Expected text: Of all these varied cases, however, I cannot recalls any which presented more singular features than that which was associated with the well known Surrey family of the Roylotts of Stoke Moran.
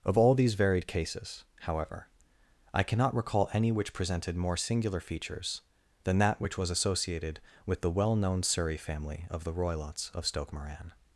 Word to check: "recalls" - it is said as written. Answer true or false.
false